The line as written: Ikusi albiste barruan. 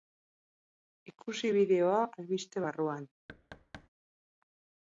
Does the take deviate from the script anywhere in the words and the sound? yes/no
yes